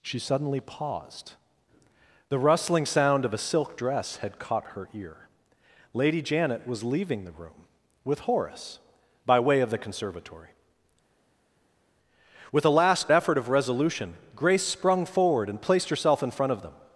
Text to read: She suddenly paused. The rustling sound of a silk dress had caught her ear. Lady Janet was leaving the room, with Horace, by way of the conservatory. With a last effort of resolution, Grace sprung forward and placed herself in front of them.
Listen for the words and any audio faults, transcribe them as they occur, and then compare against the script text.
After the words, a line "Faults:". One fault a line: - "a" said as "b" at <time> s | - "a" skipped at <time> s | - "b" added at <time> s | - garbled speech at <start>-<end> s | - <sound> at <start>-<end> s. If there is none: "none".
She suddenly paused. The rustling sound of a silk dress had caught her ear. Lady Janet was leaving the room, with Horace, by way of the conservatory. With a last effort of resolution, Grace sprung forward and placed herself in front of them.
Faults:
none